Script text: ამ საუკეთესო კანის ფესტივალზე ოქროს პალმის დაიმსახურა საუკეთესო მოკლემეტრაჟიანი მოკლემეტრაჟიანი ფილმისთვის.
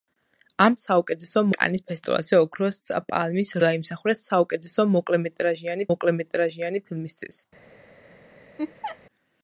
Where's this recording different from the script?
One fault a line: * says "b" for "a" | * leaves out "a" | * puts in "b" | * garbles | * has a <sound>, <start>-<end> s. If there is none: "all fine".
* has a laugh, 8.6-9.0 s